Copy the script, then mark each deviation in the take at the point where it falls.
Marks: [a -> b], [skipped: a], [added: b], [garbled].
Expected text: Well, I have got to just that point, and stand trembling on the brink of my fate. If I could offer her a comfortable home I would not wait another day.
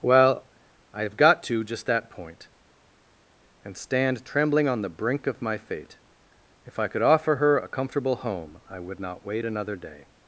Well, I have got to just that point, and stand trembling on the brink of my fate. If I could offer her a comfortable home I would not wait another day.